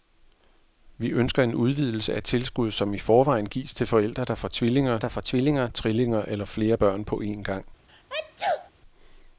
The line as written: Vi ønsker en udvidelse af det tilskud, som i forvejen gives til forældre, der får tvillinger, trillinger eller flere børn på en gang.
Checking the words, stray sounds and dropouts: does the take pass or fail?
fail